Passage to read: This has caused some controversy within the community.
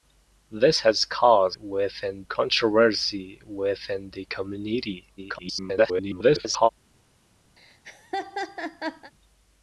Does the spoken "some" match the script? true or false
false